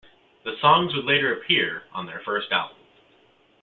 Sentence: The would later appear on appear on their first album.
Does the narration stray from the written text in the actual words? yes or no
yes